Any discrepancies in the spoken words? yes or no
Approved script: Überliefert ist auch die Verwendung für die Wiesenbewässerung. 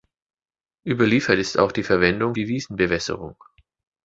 yes